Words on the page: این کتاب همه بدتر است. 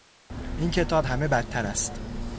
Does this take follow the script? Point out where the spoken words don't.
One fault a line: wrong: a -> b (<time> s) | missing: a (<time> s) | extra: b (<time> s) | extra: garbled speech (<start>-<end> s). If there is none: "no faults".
no faults